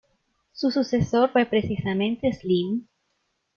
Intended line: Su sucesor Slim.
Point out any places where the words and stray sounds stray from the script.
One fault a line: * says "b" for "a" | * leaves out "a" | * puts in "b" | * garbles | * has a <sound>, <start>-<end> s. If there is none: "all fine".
* puts in "fue precisamente"